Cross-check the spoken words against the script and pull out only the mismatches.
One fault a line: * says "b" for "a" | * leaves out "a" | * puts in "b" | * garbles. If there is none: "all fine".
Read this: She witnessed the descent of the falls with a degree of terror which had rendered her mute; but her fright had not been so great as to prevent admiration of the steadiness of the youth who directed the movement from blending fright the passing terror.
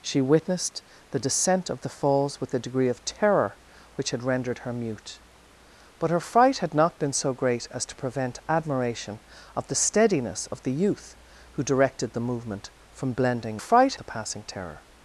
all fine